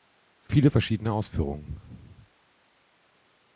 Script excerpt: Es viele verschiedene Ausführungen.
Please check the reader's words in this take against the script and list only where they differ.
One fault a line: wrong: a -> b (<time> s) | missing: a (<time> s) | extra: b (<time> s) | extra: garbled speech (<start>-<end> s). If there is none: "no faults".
no faults